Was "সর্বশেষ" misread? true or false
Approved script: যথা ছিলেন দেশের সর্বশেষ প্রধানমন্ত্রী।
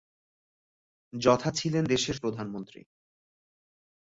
true